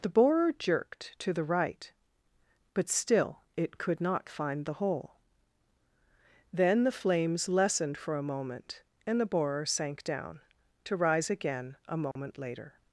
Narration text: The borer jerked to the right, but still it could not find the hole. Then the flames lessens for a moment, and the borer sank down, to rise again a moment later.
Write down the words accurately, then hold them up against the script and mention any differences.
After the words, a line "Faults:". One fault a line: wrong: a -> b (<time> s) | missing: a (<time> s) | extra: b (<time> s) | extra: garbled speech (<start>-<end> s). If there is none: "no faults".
The borer jerked to the right, but still it could not find the hole. Then the flames lessened for a moment, and the borer sank down, to rise again a moment later.
Faults:
wrong: lessens -> lessened (7.5 s)